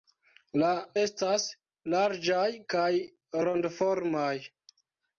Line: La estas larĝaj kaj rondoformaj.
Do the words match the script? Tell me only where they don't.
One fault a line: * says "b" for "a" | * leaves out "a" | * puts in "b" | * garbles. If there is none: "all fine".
all fine